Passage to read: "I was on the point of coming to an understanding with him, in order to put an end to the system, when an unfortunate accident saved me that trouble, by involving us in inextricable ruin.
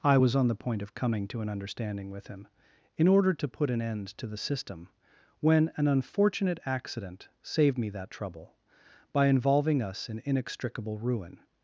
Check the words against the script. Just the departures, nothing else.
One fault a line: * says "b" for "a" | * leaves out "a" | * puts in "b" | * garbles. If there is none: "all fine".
all fine